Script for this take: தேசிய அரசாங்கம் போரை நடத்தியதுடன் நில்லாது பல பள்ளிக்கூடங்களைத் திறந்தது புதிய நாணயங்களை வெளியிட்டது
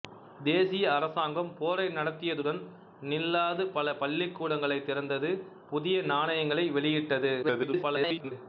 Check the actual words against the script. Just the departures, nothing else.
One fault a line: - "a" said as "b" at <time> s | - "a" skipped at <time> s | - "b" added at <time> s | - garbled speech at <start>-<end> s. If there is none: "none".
- garbled speech at 7.4-8.3 s